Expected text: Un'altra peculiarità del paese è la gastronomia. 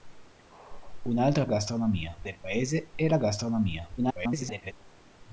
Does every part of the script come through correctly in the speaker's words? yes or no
no